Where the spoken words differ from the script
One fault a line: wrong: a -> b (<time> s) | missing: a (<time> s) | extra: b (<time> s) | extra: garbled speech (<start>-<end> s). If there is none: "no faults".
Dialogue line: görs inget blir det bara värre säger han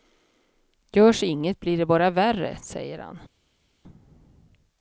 no faults